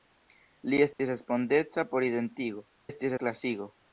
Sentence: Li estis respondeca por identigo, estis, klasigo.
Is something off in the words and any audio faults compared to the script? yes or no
yes